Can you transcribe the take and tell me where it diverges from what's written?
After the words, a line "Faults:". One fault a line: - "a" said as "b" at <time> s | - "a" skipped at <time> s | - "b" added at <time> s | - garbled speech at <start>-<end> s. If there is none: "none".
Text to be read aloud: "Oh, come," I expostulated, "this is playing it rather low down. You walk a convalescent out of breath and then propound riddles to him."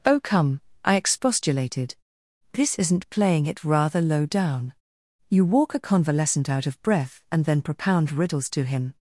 "Oh, come," I expostulated, "this isn't playing it rather low down. You walk a convalescent out of breath and then propound riddles to him."
Faults:
- "is" said as "isn't" at 2.8 s